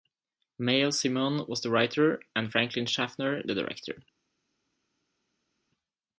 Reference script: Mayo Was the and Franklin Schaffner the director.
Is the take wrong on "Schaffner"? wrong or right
right